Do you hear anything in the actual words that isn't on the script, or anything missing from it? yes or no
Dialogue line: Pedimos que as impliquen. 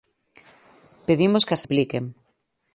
no